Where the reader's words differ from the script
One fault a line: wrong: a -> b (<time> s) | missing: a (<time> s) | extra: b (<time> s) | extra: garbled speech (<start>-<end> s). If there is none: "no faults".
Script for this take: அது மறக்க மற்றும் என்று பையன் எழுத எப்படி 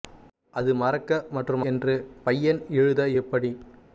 no faults